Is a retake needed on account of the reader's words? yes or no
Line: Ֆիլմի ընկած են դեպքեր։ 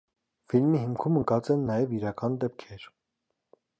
yes